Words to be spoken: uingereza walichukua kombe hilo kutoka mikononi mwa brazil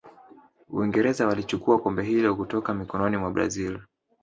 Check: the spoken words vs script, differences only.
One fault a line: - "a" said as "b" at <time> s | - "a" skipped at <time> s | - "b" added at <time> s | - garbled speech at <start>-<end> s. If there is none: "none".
none